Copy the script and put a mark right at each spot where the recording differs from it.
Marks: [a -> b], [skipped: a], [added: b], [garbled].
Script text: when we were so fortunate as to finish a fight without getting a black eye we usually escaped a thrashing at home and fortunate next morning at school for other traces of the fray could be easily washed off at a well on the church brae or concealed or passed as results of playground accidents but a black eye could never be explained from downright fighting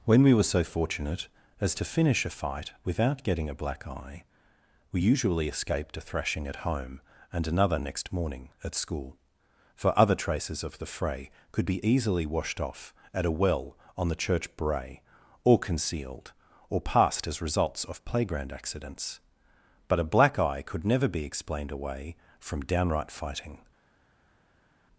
when we were so fortunate as to finish a fight without getting a black eye we usually escaped a thrashing at home and [fortunate -> another] next morning at school for other traces of the fray could be easily washed off at a well on the church brae or concealed or passed as results of playground accidents but a black eye could never be explained [added: away] from downright fighting